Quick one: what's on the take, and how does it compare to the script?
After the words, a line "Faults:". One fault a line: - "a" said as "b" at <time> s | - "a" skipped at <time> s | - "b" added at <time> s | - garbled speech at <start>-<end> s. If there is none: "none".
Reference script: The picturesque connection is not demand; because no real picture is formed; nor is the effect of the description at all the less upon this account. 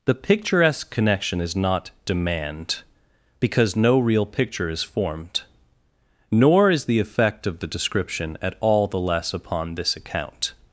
The picturesque connection is not demand; because no real picture is formed; nor is the effect of the description at all the less upon this account.
Faults:
none